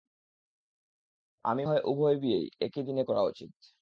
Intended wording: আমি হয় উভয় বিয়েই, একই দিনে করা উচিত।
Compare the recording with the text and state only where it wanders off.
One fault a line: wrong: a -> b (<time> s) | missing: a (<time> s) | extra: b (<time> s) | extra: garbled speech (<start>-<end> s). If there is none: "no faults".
no faults